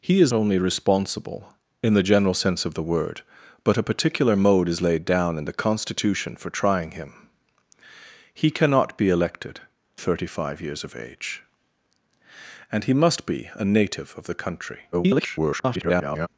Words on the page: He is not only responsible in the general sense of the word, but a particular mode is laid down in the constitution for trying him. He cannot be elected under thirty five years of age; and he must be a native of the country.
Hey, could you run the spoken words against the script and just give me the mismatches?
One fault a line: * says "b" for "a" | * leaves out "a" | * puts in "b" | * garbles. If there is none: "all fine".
* leaves out "not"
* leaves out "under"
* garbles